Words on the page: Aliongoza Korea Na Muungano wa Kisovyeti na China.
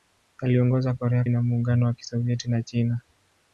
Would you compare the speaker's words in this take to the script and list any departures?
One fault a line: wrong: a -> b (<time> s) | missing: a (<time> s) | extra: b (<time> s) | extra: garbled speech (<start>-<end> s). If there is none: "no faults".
no faults